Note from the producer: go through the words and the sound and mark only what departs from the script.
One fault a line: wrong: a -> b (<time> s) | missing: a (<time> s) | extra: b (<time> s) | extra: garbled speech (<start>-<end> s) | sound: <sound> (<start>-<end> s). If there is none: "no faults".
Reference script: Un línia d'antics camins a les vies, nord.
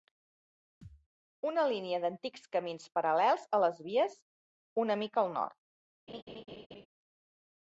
sound: thud (0.8-1.1 s)
wrong: Un -> Una (1.5 s)
extra: paral·lels (3.0 s)
extra: una mica al (4.9 s)
sound: laugh (6.1-6.9 s)